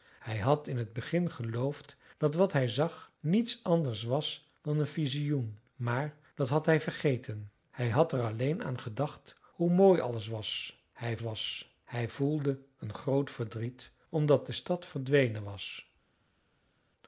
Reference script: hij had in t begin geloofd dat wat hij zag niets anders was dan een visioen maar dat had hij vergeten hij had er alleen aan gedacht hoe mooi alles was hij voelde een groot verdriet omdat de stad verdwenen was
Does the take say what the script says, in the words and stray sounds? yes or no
no